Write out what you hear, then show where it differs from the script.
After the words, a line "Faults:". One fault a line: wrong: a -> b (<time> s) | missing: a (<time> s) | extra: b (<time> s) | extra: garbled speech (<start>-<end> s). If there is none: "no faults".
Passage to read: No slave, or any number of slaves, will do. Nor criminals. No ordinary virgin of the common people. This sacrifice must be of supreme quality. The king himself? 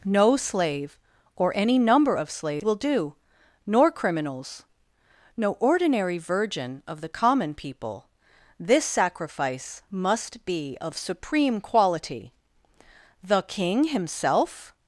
No slave, or any number of slaves, will do. Nor criminals. No ordinary virgin of the common people. This sacrifice must be of supreme quality. The king himself?
Faults:
no faults